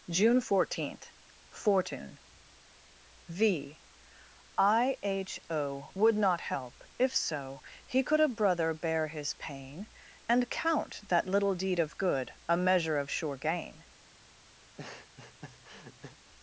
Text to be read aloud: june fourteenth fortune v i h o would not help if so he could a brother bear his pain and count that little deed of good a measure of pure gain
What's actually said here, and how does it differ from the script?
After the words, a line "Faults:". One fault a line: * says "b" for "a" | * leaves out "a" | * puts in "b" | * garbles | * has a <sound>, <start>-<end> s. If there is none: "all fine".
june fourteenth fortune v i h o would not help if so he could a brother bear his pain and count that little deed of good a measure of sure gain
Faults:
* says "sure" for "pure"
* has a laugh, 14.6-16.2 s